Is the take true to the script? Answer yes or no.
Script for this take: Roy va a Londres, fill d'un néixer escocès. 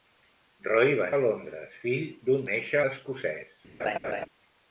yes